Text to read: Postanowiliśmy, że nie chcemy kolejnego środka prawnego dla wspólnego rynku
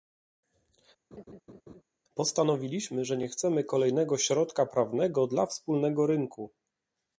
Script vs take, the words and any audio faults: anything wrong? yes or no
yes